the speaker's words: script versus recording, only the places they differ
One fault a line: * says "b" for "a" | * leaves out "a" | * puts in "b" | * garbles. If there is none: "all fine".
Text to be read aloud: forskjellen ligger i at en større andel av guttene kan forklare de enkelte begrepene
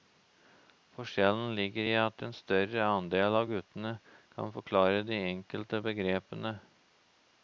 all fine